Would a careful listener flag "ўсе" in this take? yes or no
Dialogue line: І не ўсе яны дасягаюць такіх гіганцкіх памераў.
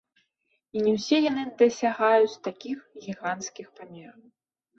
no